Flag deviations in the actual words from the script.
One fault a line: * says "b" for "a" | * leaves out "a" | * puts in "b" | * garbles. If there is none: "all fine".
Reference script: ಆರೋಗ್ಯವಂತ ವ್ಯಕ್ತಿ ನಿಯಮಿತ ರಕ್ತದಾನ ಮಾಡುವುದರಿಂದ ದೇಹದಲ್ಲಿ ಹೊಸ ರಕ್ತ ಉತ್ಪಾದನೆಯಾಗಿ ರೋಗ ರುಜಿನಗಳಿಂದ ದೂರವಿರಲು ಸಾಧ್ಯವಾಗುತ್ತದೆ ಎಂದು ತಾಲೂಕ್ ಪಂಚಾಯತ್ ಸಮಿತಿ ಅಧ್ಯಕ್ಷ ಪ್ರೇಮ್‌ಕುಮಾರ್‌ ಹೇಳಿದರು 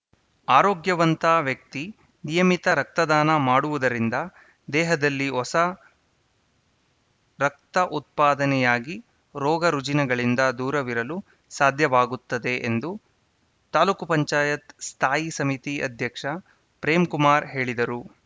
* puts in "ಸ್ಥಾಯಿ"